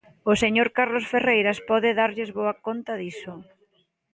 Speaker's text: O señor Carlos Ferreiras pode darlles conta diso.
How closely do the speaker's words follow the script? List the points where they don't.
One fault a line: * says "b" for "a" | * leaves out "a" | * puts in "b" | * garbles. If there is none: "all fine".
* puts in "boa"